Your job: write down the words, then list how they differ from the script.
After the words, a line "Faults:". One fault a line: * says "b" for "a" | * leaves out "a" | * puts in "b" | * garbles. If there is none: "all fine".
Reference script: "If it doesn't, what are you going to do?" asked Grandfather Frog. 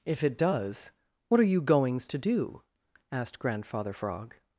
"If it does, what are you goings to do?" asked Grandfather Frog.
Faults:
* says "does" for "doesn't"
* says "goings" for "going"